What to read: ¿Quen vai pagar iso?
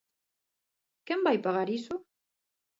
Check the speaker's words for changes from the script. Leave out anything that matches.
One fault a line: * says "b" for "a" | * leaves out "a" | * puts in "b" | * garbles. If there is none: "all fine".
all fine